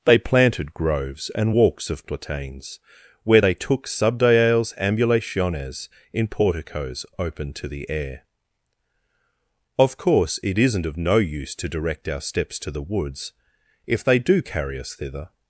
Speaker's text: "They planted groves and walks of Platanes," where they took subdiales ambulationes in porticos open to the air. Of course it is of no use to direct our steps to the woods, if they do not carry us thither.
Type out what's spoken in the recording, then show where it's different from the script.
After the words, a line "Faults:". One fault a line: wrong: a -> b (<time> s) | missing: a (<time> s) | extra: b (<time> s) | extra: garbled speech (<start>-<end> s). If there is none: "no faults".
"They planted groves and walks of Platanes," where they took subdiales ambulationes in porticos open to the air. Of course it isn't of no use to direct our steps to the woods, if they do carry us thither.
Faults:
wrong: is -> isn't (10.6 s)
missing: not (14.4 s)